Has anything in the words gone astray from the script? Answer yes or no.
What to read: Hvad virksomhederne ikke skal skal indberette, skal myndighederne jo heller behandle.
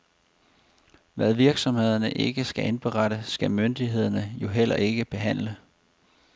yes